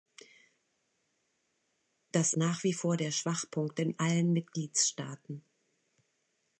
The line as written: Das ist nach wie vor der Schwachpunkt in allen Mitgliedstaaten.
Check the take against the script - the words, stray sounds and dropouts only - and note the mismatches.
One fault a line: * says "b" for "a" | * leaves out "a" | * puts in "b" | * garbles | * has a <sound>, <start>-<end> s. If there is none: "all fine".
* leaves out "ist"